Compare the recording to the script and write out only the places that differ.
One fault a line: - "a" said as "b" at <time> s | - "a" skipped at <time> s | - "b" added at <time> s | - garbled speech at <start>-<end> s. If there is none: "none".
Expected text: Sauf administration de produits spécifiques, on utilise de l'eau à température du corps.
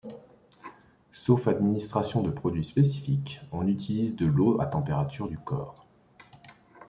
none